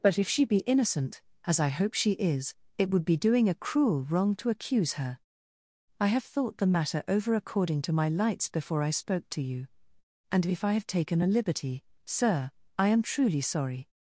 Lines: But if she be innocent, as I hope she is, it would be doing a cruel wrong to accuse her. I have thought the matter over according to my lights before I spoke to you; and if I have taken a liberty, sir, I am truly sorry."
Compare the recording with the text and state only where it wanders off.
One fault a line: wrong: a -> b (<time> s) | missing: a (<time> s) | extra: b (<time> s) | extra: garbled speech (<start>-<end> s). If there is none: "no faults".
no faults